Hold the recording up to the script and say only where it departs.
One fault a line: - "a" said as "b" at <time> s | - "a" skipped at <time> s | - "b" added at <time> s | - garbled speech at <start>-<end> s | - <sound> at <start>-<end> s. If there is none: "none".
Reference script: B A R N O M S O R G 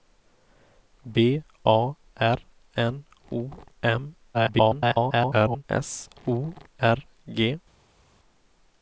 - garbled speech at 4.3-5.6 s